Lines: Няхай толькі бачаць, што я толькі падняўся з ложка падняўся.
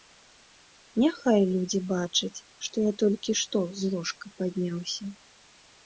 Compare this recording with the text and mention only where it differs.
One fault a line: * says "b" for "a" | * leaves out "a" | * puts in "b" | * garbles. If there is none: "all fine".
* says "людзі" for "толькі"
* says "што" for "падняўся"